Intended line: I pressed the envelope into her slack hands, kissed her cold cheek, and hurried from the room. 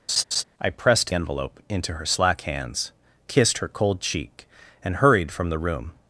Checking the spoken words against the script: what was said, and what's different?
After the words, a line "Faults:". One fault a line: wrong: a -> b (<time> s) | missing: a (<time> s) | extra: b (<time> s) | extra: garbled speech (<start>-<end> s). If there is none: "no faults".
I pressed envelope into her slack hands, kissed her cold cheek, and hurried from the room.
Faults:
missing: the (1.1 s)